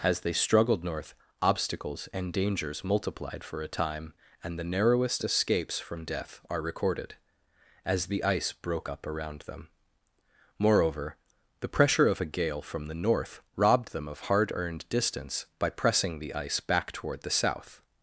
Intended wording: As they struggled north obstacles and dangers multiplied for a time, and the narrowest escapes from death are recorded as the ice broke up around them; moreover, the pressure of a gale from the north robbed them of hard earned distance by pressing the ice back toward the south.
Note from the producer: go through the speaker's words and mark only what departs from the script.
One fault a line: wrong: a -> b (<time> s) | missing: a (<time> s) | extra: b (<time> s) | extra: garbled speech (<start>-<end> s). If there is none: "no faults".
no faults